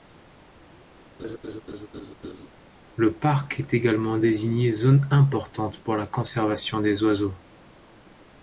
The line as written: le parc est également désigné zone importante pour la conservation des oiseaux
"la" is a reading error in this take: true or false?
false